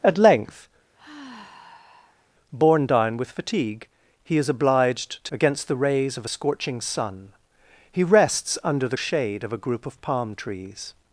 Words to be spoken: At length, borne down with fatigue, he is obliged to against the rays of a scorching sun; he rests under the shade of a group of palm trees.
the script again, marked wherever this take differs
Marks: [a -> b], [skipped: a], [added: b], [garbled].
At length, borne down with fatigue, he is obliged to against the rays of a scorching sun; he rests under the shade of a group of palm trees.